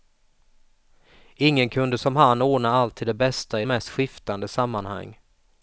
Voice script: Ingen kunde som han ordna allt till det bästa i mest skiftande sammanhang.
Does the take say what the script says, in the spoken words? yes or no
yes